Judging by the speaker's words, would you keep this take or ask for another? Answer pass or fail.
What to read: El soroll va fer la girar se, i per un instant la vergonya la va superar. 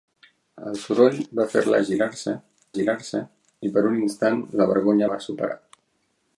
fail